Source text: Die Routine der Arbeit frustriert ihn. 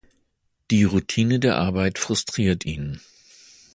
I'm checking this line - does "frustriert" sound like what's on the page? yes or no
yes